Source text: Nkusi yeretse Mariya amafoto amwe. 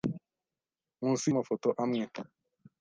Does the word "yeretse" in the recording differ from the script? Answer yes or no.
yes